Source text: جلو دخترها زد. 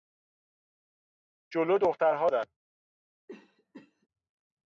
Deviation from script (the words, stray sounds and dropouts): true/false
true